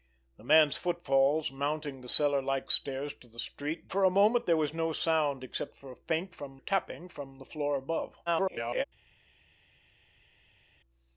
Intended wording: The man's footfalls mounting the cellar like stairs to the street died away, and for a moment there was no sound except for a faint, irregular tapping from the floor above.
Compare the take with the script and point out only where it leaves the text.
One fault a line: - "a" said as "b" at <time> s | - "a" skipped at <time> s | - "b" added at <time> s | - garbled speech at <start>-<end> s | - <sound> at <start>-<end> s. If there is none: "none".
- "died away and" skipped at 3.9 s
- "irregular" said as "from" at 6.3 s
- garbled speech at 8.3-8.8 s